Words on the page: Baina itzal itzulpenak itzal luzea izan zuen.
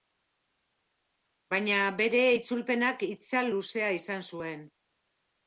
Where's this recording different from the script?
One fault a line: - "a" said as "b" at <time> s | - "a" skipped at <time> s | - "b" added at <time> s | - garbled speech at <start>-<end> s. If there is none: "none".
- "itzal" said as "bere" at 2.0 s